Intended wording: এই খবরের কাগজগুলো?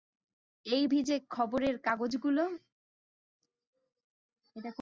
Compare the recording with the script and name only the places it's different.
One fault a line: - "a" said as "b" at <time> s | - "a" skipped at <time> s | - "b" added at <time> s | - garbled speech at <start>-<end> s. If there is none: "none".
- "ভিজে" added at 0.9 s